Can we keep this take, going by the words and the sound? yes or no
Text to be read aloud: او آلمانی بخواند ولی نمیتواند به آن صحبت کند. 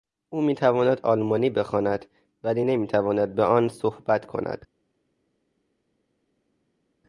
no